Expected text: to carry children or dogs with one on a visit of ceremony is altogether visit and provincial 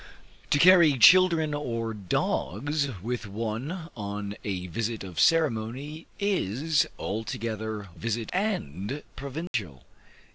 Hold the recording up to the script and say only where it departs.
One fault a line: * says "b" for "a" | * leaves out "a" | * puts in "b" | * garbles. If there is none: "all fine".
all fine